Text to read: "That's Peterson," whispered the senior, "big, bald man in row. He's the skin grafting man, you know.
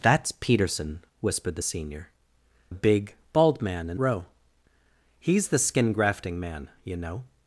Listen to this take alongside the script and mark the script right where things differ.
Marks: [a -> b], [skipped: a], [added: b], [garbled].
"That's Peterson," whispered the senior, "big, bald man in row. He's the skin grafting man, you know.